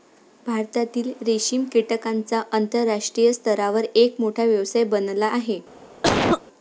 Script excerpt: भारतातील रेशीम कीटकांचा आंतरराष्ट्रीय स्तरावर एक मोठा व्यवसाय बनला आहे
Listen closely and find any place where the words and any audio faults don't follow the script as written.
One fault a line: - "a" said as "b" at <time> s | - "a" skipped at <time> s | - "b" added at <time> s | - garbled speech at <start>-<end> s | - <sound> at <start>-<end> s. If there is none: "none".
- cough at 6.0-6.4 s